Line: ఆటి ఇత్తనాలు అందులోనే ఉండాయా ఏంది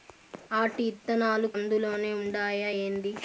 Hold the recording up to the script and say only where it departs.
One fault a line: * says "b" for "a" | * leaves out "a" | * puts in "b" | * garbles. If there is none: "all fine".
all fine